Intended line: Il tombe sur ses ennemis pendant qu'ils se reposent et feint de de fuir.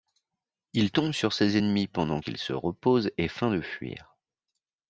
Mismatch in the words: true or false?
true